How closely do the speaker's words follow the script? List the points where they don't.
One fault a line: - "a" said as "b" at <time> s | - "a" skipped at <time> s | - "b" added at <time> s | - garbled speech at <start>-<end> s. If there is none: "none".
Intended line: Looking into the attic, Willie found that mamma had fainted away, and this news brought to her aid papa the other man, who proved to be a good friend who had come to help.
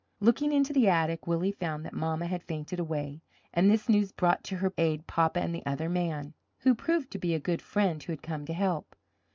- "and" added at 5.4 s